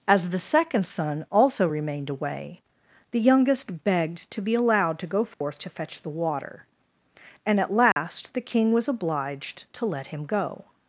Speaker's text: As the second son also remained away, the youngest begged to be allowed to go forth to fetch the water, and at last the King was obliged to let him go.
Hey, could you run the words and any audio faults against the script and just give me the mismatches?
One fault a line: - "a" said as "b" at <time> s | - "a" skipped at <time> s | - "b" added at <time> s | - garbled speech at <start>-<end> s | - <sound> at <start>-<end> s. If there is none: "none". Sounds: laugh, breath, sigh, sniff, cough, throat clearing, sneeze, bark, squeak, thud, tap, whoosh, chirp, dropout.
- dropout at 5.3-5.4 s
- dropout at 7.9-8.0 s